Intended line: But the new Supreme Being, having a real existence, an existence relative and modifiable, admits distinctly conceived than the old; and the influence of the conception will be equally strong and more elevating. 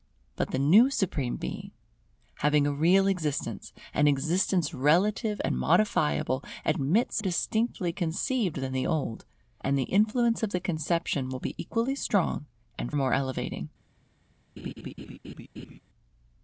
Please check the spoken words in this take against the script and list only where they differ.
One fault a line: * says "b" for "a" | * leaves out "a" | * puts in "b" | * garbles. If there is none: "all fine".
all fine